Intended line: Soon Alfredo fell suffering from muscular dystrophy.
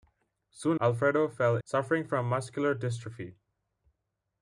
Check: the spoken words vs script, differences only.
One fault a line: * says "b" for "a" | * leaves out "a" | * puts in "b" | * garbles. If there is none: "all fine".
all fine